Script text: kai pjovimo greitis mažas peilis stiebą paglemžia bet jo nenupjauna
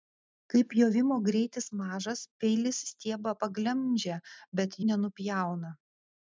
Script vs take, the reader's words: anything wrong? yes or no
yes